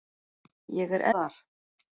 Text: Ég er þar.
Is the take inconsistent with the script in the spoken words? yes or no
no